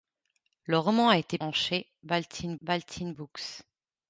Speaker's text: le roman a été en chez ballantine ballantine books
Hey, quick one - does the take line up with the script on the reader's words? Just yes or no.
yes